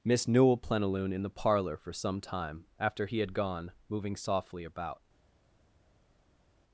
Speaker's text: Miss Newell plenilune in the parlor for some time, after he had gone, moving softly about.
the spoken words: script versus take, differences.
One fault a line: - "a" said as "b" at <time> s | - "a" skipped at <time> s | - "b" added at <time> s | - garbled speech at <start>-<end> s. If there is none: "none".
none